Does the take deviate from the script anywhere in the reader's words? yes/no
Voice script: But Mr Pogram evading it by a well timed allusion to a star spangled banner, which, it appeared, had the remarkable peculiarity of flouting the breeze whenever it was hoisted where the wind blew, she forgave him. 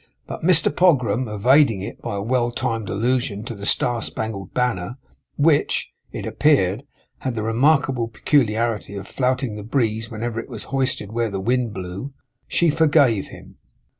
yes